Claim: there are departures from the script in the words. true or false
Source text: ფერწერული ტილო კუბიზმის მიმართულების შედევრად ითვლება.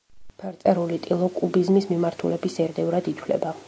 false